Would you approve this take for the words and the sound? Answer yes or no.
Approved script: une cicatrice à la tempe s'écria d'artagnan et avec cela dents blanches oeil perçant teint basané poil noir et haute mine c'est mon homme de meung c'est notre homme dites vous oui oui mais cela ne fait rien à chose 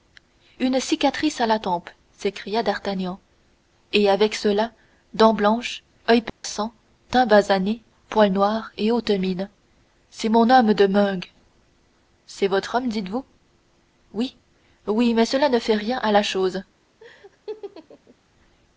no